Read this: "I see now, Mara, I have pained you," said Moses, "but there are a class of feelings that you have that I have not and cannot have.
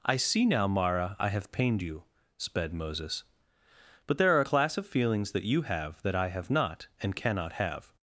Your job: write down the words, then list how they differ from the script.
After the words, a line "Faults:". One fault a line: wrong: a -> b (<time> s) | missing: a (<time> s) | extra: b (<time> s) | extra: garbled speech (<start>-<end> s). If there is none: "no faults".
"I see now, Mara, I have pained you," sped Moses, "but there are a class of feelings that you have that I have not and cannot have.
Faults:
wrong: said -> sped (2.4 s)